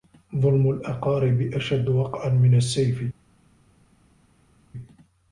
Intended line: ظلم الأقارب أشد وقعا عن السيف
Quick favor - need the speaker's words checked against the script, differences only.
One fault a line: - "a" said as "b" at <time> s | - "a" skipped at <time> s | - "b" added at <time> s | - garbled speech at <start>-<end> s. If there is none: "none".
- "عن" said as "من" at 2.3 s